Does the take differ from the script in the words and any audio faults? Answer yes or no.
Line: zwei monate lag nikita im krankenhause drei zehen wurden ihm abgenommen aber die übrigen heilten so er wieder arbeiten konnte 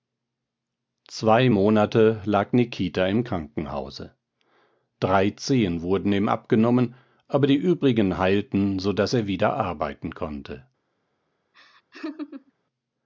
yes